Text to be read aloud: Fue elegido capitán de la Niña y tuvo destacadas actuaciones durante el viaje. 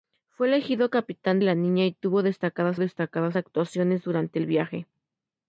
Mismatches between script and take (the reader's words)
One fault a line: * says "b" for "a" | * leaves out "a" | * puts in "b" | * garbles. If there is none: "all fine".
* leaves out "de"
* puts in "destacadas"